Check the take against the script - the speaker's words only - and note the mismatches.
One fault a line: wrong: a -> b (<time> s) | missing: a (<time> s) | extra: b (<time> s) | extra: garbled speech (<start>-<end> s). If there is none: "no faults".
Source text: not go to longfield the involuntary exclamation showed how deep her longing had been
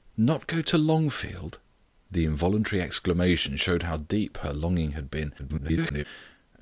extra: garbled speech (5.4-6.0 s)